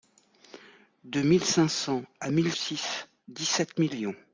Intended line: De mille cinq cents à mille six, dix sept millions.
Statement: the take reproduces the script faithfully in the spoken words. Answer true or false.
true